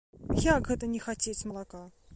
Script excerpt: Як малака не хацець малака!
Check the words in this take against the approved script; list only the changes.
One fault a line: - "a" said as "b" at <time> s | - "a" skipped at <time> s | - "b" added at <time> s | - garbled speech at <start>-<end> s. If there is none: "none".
- "малака" said as "гэта" at 0.7 s